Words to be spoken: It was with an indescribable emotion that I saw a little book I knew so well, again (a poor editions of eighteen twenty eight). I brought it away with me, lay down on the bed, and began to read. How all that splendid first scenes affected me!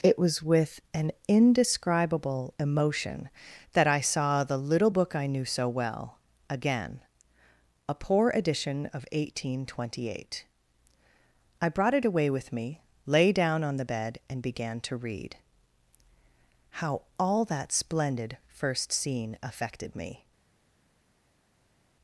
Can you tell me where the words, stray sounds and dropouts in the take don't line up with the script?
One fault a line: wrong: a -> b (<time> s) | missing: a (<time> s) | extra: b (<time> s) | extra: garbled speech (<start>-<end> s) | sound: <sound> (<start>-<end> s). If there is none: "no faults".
wrong: a -> the (4.4 s)
wrong: editions -> edition (8.3 s)
wrong: scenes -> scene (18.9 s)